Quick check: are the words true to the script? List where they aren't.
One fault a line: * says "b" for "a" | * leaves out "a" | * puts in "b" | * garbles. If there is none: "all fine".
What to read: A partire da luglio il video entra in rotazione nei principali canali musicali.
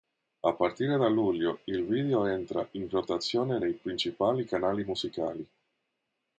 all fine